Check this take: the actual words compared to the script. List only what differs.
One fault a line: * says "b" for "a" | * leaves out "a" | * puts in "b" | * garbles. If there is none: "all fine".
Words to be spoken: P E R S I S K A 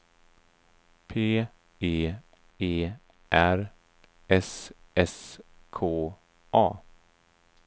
* puts in "E"
* leaves out "I"